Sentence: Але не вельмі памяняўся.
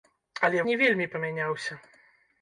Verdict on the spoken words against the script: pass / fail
pass